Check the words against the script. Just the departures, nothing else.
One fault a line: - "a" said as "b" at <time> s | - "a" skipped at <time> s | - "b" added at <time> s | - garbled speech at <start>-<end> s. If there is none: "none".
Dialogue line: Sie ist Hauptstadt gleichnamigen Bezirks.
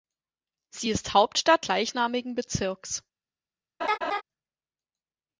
none